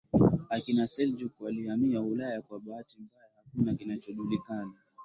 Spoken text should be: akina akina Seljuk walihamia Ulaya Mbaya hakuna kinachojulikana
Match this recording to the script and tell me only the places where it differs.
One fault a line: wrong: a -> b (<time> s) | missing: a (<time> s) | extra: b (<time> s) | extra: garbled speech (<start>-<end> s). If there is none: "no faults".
missing: akina (0.9 s)
extra: Kwa bahati (2.4 s)